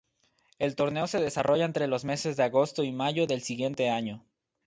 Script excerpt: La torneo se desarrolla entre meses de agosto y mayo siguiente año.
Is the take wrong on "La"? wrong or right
wrong